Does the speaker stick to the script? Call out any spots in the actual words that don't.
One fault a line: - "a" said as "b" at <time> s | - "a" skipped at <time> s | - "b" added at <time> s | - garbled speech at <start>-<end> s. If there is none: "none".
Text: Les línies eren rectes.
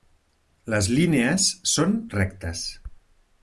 - "eren" said as "són" at 1.7 s